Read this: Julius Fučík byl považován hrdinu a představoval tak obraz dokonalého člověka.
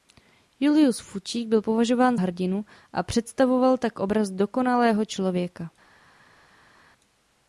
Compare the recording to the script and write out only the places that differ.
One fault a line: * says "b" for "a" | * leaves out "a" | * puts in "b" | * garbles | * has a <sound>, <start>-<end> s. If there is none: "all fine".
all fine